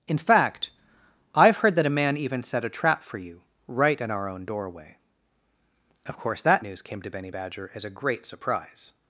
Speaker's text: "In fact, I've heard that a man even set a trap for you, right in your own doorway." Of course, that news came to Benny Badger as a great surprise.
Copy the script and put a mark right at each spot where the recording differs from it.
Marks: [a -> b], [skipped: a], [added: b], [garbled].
"In fact, I've heard that a man even set a trap for you, right in [your -> our] own doorway." Of course, that news came to Benny Badger as a great surprise.